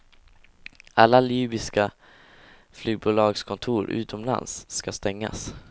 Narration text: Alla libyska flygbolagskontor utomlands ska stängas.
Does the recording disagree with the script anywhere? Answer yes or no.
no